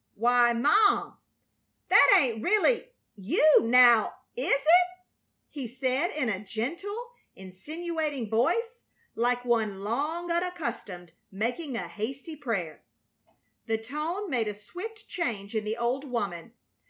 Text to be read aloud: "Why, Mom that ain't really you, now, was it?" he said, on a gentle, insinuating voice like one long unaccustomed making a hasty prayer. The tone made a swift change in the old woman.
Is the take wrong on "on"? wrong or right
wrong